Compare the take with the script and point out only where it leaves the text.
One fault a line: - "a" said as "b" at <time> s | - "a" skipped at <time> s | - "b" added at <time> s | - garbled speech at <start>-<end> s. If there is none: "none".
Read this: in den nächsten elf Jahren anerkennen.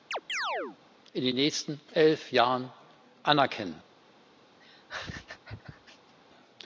none